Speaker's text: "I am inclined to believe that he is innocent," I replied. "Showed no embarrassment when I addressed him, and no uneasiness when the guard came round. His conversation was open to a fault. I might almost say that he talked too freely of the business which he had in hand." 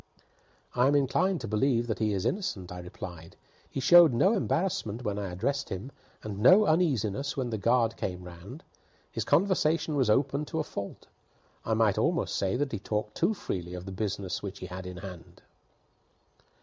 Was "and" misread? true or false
false